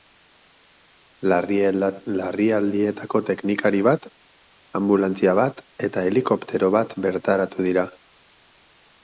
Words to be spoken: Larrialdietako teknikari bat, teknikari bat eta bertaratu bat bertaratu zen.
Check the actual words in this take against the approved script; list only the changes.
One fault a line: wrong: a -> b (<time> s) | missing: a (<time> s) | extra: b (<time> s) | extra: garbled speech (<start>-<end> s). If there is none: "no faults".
wrong: teknikari -> anbulantzia (4.8 s)
wrong: bertaratu -> helikoptero (6.1 s)
wrong: zen -> dira (7.7 s)